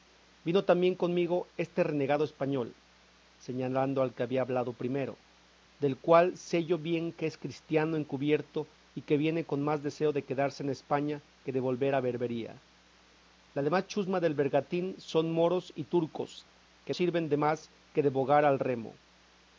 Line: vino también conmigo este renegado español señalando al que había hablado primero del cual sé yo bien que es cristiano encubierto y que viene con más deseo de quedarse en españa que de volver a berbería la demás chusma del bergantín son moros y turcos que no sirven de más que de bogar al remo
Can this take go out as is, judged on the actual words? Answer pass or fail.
fail